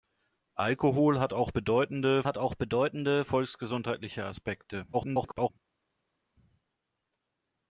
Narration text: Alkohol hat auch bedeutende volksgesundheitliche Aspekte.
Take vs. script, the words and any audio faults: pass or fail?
fail